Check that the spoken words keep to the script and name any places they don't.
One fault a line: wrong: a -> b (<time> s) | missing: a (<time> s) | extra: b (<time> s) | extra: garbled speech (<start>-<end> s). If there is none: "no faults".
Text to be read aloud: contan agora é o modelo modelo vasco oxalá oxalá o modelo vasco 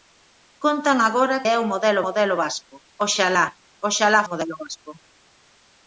no faults